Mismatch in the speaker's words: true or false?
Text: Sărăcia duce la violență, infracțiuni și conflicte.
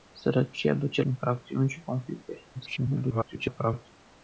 true